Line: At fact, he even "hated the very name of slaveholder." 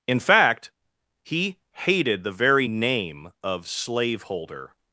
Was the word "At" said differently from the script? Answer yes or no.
yes